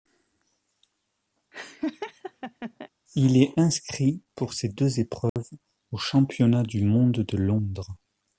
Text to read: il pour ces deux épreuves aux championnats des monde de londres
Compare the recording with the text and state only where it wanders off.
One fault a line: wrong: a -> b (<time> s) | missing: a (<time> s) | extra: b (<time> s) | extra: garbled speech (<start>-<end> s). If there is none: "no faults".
extra: est inscrit (3.4 s)
wrong: des -> du (6.6 s)